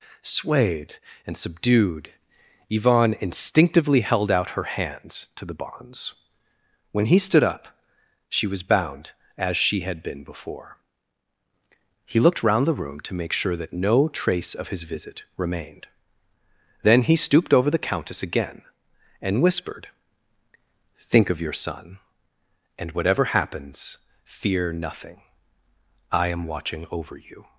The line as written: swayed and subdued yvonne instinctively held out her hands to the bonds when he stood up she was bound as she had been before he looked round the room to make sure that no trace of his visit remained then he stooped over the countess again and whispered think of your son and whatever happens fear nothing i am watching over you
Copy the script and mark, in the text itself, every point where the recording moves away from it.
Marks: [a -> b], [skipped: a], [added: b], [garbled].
swayed and subdued yvonne instinctively held out her hands to the bonds when he stood up she was bound as she had been before he looked round the room to make sure that no trace of his visit remained then he stooped over the countess again and whispered think of your son and whatever happens fear nothing i am watching over you